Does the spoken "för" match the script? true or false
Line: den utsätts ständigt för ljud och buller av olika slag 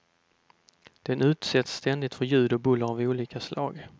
true